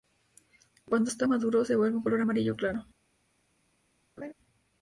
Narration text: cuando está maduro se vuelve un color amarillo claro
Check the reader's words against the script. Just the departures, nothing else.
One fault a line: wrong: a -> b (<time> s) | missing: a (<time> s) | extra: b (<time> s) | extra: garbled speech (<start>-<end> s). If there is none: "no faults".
no faults